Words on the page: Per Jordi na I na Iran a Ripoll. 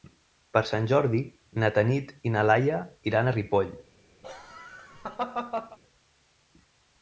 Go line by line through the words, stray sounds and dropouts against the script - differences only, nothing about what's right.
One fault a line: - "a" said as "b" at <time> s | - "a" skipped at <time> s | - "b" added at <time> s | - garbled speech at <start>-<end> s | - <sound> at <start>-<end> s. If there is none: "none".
- "Sant" added at 0.7 s
- "Tanit" added at 1.8 s
- "Laia" added at 2.5 s
- laugh at 4.2-5.8 s